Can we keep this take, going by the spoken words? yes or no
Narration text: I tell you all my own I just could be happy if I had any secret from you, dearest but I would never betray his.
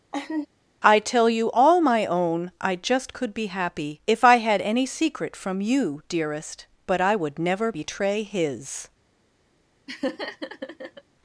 yes